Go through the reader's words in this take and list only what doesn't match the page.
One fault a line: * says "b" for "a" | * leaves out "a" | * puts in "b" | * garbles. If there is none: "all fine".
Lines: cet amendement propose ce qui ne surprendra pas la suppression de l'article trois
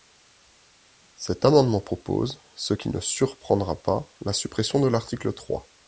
all fine